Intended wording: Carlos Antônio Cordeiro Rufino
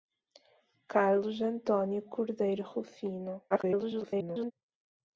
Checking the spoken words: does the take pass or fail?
fail